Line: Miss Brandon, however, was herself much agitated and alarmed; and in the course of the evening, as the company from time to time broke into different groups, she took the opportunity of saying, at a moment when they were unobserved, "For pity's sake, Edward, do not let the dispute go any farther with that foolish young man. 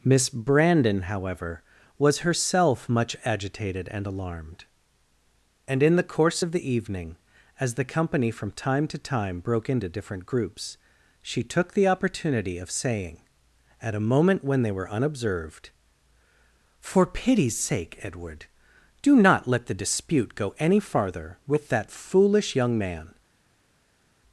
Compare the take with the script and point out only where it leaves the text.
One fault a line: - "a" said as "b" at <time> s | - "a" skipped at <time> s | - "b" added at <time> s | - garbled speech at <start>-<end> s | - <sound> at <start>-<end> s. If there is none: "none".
none